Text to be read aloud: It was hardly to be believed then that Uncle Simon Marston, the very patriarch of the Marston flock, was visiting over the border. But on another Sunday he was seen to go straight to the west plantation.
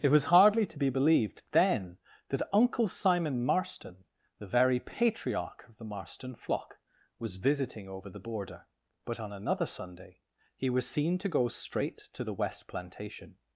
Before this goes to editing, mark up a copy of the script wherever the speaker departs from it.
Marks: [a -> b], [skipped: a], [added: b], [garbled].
It was hardly to be believed then that Uncle Simon Marston, the very patriarch of the Marston flock, was visiting over the border. But on another Sunday he was seen to go straight to the west plantation.